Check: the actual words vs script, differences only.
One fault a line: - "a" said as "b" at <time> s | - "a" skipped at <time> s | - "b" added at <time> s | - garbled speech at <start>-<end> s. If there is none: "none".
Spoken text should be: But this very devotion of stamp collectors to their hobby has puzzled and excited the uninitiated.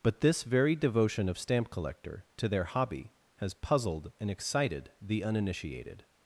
- "collectors" said as "collector" at 1.7 s